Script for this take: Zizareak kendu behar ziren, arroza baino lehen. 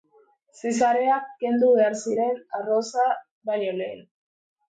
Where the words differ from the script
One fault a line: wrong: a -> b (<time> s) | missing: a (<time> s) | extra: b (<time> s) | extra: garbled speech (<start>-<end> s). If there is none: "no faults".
no faults